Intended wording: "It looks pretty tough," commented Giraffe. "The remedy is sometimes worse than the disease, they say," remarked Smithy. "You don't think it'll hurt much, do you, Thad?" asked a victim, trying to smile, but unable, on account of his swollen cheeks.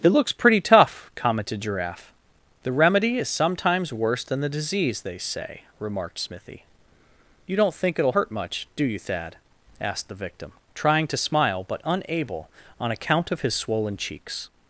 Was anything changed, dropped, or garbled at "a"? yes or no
yes